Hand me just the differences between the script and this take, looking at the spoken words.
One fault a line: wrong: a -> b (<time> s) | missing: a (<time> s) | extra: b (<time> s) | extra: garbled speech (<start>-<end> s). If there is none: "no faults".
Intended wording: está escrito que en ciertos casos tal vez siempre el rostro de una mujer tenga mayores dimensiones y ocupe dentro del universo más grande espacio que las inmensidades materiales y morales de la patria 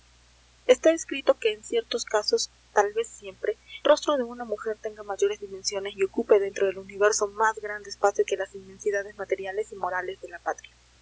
missing: el (3.6 s)